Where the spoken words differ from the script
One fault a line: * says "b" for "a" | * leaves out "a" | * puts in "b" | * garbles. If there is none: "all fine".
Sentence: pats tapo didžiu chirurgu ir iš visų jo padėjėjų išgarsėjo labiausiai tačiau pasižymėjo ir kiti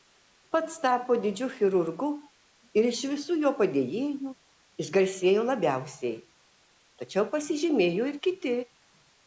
all fine